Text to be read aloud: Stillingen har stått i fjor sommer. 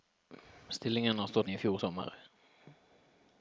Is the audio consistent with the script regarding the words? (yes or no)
yes